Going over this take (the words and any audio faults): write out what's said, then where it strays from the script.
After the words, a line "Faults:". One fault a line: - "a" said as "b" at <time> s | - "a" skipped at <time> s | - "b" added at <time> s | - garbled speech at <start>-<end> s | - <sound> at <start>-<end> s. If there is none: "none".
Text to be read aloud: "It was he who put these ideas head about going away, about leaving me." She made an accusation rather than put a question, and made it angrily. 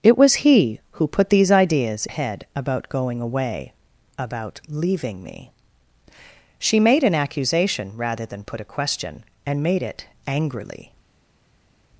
"It was he who put these ideas head about going away, about leaving me." She made an accusation rather than put a question, and made it angrily.
Faults:
none